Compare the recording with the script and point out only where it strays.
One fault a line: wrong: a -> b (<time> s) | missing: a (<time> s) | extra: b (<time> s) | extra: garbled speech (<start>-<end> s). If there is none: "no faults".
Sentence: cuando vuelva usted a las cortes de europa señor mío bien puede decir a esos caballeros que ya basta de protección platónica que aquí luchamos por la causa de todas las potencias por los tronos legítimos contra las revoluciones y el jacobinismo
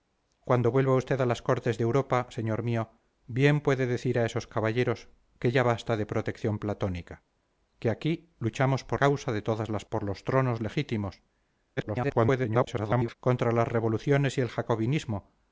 missing: la (9.0 s)
missing: potencias (9.8 s)
extra: garbled speech (11.8-13.1 s)